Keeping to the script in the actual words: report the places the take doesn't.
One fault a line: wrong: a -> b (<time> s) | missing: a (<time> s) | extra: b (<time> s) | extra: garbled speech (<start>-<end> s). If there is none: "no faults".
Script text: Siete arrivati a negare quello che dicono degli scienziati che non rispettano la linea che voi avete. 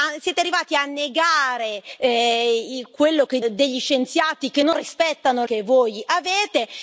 missing: dicono (3.4 s)
missing: la linea (5.4 s)